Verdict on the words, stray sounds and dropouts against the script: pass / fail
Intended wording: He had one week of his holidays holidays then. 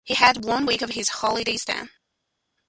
fail